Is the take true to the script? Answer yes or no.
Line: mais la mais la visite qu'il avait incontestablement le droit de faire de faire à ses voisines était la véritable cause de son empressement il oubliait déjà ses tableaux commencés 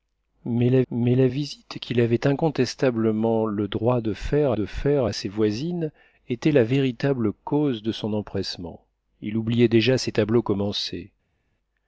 yes